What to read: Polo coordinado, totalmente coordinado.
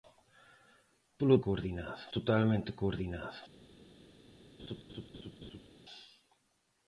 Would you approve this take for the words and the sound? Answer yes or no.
no